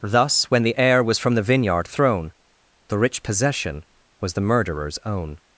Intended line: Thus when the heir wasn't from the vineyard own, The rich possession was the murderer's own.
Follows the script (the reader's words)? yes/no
no